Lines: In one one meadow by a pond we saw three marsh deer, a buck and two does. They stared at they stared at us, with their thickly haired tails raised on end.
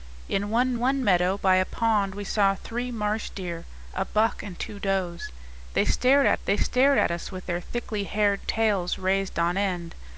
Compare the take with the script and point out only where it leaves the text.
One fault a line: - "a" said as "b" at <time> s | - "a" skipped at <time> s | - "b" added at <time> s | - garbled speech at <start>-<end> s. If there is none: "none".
none